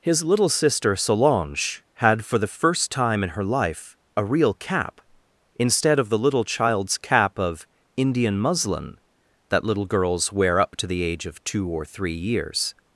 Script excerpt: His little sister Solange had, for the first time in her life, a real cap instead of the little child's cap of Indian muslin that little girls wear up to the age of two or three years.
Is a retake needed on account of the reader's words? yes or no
no